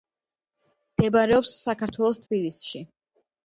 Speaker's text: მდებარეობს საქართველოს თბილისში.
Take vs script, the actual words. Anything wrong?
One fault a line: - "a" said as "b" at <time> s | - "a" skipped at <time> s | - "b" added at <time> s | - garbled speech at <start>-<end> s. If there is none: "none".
none